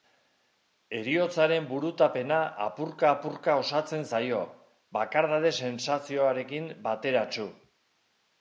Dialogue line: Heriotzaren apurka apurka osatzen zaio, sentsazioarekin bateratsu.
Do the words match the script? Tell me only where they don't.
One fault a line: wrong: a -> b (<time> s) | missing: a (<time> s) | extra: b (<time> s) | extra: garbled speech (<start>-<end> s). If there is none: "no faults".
extra: burutapena (1.7 s)
extra: bakardade (5.0 s)